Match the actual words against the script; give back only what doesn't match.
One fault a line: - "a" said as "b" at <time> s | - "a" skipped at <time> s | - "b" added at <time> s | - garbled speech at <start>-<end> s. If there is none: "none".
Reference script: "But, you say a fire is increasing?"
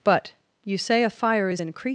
none